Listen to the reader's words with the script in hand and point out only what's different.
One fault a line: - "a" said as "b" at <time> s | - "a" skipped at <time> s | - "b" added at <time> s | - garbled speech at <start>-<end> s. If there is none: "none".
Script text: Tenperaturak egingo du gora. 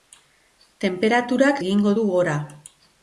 none